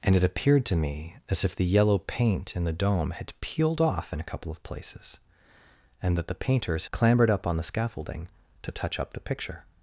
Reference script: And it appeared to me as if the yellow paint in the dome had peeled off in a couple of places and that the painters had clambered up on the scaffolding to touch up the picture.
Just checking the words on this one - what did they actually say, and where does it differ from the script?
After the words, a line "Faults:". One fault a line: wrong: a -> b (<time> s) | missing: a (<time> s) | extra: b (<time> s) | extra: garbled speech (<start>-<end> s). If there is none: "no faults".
And it appeared to me as if the yellow paint in the dome had peeled off in a couple of places and that the painters clambered up on the scaffolding to touch up the picture.
Faults:
missing: had (6.9 s)